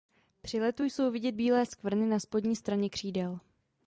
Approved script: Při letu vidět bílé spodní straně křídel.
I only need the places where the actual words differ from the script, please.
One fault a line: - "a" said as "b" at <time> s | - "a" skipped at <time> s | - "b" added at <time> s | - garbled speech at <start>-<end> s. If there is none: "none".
- "jsou" added at 0.8 s
- "skvrny na" added at 1.6 s